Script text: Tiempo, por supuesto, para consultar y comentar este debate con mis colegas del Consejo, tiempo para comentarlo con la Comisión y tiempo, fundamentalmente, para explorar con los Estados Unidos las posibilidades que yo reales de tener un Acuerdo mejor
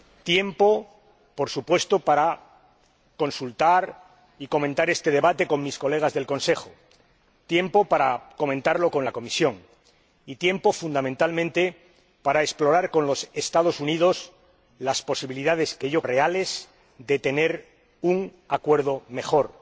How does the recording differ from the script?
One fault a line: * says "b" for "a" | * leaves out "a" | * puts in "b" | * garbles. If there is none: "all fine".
all fine